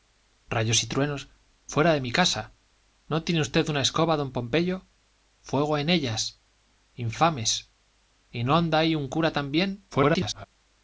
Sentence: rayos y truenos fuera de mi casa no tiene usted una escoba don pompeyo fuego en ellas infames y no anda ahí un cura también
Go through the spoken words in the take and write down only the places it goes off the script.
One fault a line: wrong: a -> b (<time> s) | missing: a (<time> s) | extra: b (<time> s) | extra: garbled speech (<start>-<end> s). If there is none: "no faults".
extra: garbled speech (9.9-10.5 s)